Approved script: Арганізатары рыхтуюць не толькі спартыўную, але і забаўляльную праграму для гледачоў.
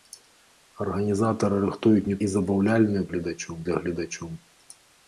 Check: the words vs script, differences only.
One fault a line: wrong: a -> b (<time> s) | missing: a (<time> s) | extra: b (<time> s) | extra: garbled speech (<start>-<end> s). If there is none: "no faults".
missing: толькі спартыўную але (2.2 s)
wrong: праграму -> гледачоў (3.1 s)